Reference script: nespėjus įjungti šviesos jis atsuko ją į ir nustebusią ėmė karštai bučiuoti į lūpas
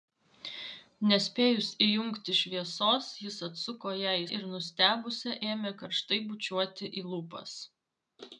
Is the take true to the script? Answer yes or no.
yes